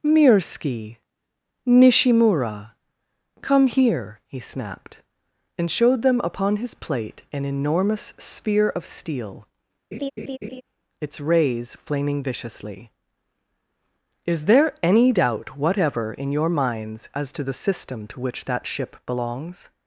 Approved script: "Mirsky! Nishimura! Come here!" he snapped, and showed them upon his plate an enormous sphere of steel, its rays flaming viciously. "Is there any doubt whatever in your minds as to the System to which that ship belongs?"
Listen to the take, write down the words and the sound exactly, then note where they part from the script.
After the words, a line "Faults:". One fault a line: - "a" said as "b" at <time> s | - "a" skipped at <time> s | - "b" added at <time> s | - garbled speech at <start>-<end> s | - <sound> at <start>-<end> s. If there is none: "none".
"Mirsky! Nishimura! Come here!" he snapped, and showed them upon his plate an enormous sphere of steel, its rays flaming viciously. "Is there any doubt whatever in your minds as to the System to which that ship belongs?"
Faults:
- laugh at 9.9-10.6 s